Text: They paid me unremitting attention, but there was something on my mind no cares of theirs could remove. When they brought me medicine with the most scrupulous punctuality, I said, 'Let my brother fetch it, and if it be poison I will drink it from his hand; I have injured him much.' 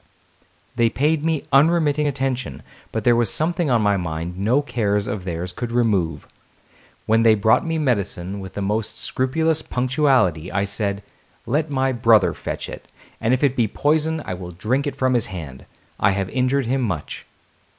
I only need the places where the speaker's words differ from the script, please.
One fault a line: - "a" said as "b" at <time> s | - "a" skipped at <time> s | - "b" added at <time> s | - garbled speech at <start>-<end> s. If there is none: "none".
none